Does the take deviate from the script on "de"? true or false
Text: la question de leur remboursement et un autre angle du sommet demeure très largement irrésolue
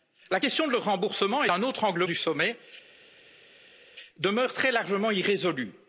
false